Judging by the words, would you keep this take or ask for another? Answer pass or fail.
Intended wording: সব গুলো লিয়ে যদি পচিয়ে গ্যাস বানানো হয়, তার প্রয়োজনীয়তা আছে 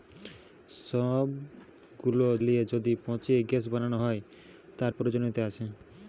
pass